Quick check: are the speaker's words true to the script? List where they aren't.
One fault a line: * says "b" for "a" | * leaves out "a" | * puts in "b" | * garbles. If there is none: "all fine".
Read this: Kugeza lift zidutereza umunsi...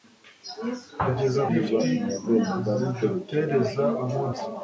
all fine